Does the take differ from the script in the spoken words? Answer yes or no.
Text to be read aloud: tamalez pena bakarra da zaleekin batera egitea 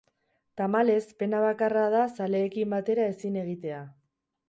yes